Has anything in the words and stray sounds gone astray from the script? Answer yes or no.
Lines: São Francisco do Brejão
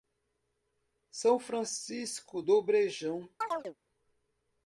yes